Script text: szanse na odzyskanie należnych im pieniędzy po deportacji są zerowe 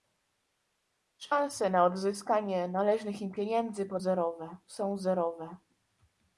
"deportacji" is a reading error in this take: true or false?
true